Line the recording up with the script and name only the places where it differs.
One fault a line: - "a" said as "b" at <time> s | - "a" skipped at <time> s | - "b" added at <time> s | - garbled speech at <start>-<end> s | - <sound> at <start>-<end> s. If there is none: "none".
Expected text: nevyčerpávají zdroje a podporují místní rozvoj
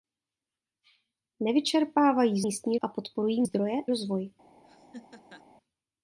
- "zdroje" said as "místní" at 2.4 s
- "místní" said as "zdroje" at 3.4 s
- laugh at 4.6-5.5 s